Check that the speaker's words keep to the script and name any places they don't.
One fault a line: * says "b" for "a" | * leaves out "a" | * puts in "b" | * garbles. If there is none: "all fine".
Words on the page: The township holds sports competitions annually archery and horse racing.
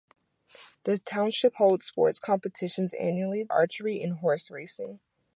all fine